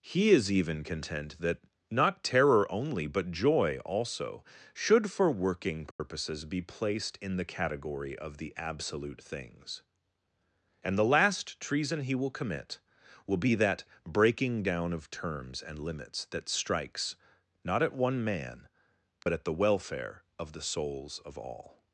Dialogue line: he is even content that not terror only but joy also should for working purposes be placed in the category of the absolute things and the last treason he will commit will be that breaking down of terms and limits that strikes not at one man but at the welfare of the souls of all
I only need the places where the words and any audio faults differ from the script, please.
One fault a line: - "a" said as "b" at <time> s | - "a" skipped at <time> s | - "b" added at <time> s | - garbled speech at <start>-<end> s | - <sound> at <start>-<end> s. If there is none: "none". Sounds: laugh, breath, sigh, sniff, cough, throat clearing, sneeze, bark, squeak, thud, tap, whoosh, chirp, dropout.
- dropout at 5.9-6.0 s
- dropout at 19.2-19.3 s